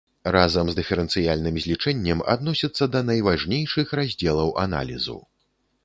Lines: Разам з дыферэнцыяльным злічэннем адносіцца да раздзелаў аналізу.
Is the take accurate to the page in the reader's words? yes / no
no